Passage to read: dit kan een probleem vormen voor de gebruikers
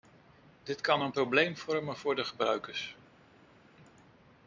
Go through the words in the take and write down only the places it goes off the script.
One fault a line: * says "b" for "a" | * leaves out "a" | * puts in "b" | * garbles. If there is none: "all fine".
all fine